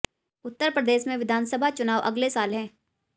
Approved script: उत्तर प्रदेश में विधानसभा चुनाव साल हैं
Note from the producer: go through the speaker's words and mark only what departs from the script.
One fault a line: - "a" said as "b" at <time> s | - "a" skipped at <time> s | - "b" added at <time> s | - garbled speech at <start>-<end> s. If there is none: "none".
- "अगले" added at 2.0 s